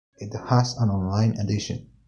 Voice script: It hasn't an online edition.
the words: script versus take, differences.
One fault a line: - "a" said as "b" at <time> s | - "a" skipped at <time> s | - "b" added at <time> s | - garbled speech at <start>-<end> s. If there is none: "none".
- "hasn't" said as "has" at 0.5 s